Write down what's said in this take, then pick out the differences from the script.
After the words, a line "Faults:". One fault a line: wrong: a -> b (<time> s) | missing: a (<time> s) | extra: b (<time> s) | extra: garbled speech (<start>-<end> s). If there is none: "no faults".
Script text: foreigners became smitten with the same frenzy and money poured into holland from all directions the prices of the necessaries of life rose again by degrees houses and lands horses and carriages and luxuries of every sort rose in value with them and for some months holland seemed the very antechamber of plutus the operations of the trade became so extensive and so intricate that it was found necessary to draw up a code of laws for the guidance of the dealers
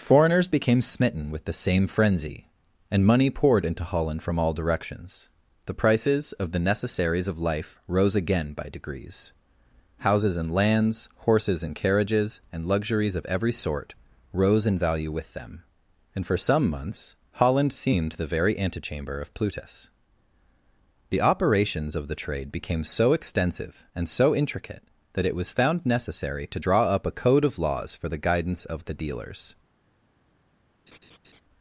foreigners became smitten with the same frenzy and money poured into holland from all directions the prices of the necessaries of life rose again by degrees houses and lands horses and carriages and luxuries of every sort rose in value with them and for some months holland seemed the very antechamber of plutus the operations of the trade became so extensive and so intricate that it was found necessary to draw up a code of laws for the guidance of the dealers
Faults:
no faults